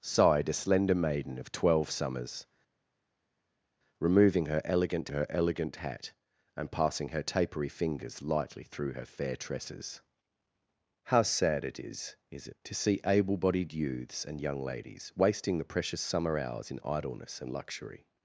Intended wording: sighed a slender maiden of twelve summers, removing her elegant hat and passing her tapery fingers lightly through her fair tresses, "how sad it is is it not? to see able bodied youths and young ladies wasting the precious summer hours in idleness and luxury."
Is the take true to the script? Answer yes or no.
no